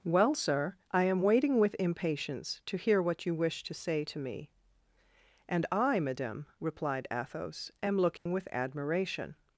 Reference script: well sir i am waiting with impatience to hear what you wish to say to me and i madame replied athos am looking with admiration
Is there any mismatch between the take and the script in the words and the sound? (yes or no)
yes